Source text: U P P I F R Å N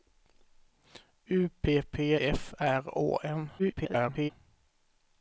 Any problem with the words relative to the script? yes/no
yes